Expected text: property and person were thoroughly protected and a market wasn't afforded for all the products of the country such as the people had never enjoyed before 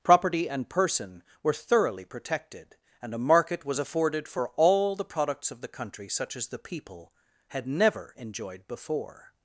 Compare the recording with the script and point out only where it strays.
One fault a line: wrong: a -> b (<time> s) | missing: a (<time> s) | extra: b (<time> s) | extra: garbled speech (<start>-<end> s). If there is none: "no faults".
wrong: wasn't -> was (3.6 s)